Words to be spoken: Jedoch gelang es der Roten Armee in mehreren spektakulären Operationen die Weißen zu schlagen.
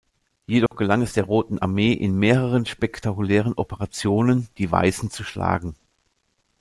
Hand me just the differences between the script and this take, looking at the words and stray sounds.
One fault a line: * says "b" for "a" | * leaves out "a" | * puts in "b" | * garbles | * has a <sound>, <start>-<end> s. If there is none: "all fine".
* has a dropout, 0.7-0.7 s